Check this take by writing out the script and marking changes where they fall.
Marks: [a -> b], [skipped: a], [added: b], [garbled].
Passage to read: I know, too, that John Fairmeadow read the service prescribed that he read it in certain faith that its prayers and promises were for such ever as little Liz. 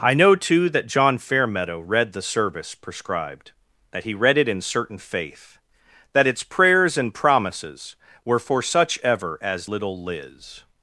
I know, too, that John Fairmeadow read the service prescribed that he read it in certain faith that its prayers and promises were for such ever as little Liz.